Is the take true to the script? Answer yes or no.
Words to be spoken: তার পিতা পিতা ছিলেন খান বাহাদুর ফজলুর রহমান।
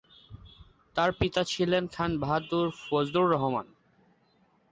no